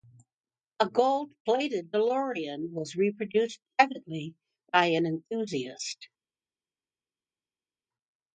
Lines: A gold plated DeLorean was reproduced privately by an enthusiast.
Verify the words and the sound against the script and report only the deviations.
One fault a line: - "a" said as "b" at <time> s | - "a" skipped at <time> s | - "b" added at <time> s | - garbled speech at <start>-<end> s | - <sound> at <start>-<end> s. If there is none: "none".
none